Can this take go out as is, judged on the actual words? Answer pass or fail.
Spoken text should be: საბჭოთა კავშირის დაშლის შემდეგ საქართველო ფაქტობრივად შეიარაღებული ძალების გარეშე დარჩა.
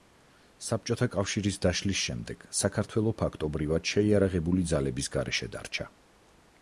pass